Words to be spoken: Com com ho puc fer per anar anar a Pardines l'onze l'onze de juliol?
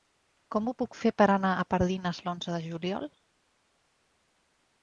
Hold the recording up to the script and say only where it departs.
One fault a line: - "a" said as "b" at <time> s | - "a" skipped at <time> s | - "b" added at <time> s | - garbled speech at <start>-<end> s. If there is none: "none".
- "com" skipped at 0.7 s
- "anar" skipped at 1.5 s
- "l'onze" skipped at 2.5 s